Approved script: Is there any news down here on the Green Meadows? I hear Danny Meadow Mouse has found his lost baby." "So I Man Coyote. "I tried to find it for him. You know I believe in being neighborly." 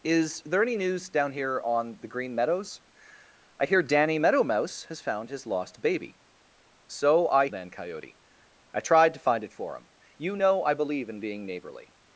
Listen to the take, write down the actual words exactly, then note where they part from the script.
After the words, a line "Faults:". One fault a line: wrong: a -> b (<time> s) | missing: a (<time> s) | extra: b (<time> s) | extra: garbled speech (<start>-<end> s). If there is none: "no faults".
Is there any news down here on the Green Meadows? I hear Danny Meadow Mouse has found his lost baby." "So I Man Coyote. "I tried to find it for him. You know I believe in being neighborly."
Faults:
no faults